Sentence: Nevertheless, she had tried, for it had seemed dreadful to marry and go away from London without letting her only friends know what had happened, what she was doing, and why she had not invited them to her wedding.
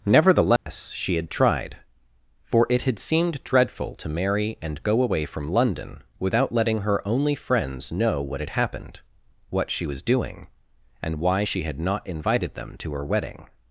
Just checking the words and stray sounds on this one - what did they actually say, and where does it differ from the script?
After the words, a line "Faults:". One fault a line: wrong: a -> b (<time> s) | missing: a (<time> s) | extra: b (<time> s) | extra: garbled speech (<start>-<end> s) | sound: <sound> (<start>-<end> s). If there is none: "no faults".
Nevertheless, she had tried, for it had seemed dreadful to marry and go away from London without letting her only friends know what had happened, what she was doing, and why she had not invited them to her wedding.
Faults:
sound: dropout (0.6-0.7 s)